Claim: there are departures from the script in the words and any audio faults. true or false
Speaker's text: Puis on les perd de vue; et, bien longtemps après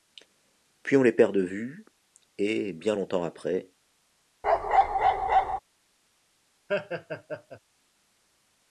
true